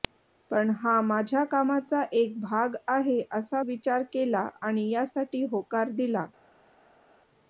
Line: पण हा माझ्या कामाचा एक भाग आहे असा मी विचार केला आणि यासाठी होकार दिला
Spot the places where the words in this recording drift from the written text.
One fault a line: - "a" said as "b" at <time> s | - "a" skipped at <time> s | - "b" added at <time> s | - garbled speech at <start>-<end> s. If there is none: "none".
- "मी" skipped at 3.6 s